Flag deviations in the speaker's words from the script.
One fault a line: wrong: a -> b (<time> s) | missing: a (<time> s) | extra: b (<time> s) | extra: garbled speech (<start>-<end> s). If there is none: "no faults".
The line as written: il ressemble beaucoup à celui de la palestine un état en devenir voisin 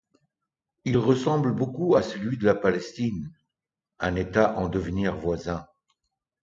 no faults